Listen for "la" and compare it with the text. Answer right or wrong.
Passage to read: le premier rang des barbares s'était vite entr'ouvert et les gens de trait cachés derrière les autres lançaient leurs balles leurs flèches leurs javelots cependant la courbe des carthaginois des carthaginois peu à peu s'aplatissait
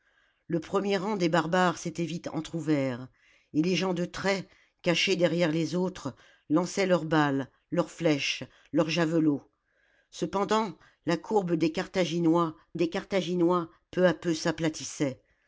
right